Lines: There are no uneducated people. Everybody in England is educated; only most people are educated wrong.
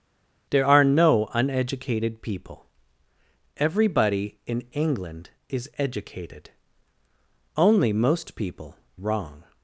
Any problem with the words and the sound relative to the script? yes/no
yes